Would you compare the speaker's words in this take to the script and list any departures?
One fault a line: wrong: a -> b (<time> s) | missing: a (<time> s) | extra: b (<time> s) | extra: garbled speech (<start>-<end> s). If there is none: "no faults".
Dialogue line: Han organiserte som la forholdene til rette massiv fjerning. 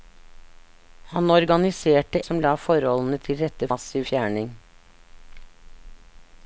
no faults